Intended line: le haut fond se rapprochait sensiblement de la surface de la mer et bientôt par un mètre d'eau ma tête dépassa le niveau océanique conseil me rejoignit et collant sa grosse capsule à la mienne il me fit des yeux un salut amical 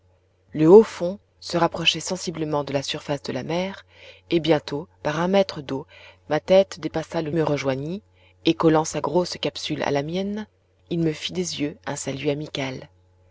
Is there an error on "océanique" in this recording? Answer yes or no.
yes